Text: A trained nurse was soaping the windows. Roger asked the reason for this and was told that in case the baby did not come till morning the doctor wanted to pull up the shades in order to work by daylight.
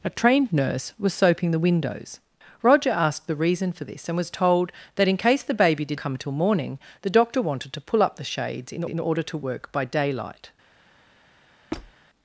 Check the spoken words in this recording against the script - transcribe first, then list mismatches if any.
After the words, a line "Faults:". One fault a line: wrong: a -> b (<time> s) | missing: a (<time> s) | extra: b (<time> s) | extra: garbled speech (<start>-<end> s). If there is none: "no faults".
A trained nurse was soaping the windows. Roger asked the reason for this and was told that in case the baby did come till morning the doctor wanted to pull up the shades in in order to work by daylight.
Faults:
missing: not (6.0 s)
extra: in (8.9 s)